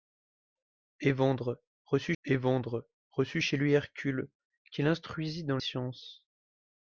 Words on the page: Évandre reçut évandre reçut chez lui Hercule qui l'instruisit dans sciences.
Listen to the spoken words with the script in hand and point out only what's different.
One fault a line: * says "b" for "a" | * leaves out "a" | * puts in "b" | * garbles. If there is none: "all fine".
all fine